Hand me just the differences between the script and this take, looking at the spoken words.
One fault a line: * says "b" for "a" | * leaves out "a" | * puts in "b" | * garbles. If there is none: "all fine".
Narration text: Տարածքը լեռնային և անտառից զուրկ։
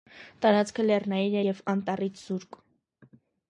all fine